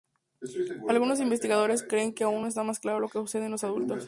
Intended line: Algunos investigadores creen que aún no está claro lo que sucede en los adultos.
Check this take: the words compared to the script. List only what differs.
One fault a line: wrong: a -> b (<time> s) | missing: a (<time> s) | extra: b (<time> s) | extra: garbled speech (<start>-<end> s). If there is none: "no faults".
no faults